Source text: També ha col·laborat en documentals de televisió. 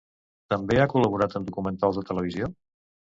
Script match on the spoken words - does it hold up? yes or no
yes